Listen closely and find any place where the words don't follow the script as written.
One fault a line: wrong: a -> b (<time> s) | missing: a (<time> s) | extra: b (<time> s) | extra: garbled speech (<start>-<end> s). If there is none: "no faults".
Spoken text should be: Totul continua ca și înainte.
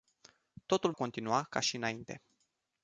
no faults